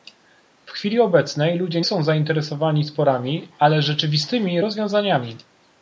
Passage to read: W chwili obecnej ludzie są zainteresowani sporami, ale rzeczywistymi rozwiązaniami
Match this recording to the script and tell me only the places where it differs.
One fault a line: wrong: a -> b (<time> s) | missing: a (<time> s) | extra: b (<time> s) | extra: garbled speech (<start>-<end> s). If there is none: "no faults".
no faults